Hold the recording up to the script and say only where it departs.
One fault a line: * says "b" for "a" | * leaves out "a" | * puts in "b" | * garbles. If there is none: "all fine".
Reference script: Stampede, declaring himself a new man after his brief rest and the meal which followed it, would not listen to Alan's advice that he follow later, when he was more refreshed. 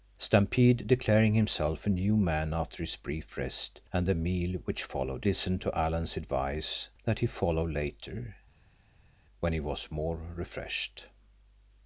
* leaves out "it would not"